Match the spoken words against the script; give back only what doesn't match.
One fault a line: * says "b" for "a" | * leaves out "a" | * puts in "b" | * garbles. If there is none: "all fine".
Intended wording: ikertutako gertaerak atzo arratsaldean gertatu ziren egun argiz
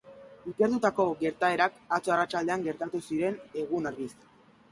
all fine